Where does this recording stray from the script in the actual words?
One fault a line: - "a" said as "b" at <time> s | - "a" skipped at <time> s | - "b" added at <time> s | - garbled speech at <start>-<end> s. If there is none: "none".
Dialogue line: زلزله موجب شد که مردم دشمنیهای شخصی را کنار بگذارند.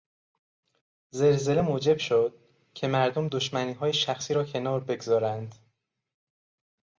none